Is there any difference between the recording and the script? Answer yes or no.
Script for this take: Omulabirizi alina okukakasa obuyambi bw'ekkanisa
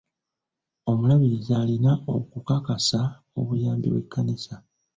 no